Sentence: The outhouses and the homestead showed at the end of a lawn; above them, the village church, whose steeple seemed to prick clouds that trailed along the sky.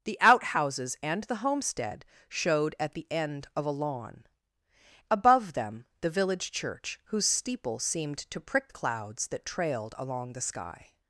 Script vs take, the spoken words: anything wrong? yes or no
no